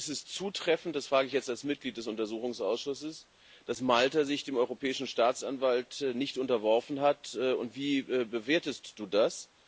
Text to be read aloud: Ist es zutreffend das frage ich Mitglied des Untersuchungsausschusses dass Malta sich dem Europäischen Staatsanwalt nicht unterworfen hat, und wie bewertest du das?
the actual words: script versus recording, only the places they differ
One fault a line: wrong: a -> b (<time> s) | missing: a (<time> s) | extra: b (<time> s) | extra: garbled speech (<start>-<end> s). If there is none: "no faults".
extra: jetzt als (1.3 s)